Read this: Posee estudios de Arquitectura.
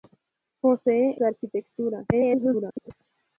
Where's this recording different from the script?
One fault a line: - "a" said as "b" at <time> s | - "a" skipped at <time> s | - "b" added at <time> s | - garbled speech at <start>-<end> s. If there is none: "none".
- "estudios" skipped at 1.1 s
- garbled speech at 2.1-2.9 s